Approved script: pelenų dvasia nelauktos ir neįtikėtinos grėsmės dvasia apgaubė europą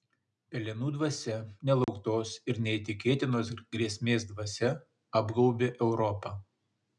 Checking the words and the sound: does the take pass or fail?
fail